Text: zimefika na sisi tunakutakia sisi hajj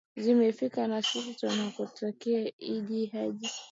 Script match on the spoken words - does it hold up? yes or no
no